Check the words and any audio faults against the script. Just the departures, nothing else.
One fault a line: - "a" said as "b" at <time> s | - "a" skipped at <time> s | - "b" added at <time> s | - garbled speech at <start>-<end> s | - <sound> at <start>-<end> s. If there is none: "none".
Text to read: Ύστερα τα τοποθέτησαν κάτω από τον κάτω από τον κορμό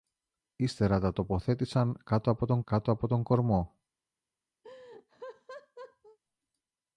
- laugh at 4.6-6.2 s